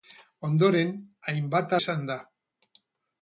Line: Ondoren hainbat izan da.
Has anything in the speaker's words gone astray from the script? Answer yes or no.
no